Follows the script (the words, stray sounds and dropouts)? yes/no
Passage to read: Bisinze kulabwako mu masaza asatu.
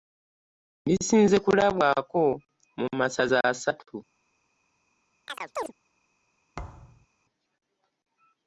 no